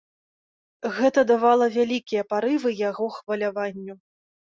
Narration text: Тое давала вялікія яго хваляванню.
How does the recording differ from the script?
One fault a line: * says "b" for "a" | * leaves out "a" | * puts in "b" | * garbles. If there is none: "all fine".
* says "Гэта" for "Тое"
* puts in "парывы"